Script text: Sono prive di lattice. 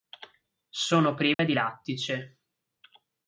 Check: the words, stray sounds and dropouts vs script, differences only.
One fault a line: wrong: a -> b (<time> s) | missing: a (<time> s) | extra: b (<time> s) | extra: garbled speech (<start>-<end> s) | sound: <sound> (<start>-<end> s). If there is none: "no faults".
sound: dropout (1.3-1.4 s)